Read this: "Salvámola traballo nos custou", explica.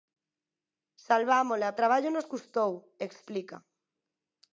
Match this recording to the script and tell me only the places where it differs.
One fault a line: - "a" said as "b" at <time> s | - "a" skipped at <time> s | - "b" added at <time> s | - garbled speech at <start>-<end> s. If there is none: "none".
none